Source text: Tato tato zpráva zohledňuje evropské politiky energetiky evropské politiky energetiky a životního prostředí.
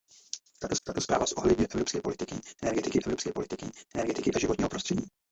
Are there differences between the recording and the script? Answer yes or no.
no